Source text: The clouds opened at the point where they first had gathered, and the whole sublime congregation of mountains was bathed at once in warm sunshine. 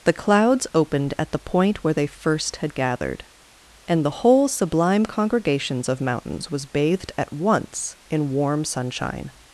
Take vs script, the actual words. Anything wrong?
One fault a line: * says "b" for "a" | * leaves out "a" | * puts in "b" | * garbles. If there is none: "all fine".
* says "congregations" for "congregation"